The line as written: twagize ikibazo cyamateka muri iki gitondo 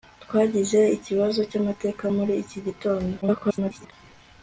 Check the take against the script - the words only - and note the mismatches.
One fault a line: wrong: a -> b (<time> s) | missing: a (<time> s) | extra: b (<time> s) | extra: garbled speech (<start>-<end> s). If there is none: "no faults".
extra: garbled speech (3.2-3.9 s)